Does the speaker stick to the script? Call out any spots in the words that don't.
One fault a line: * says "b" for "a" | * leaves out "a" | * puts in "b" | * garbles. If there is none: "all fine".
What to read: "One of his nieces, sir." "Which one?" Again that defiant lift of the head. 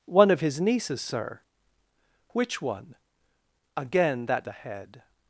* leaves out "defiant lift of"